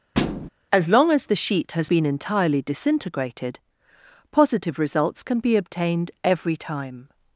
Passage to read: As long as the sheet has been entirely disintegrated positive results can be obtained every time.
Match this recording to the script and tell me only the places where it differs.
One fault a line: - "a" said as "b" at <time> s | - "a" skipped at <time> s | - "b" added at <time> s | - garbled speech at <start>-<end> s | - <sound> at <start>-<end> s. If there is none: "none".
- thud at 0.1-0.5 s